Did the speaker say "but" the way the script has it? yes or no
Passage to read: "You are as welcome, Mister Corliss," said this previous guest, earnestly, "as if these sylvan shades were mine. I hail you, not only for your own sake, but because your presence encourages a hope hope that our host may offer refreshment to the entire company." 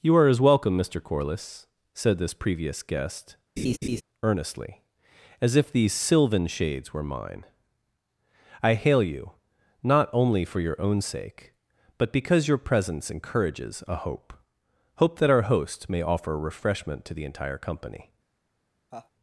yes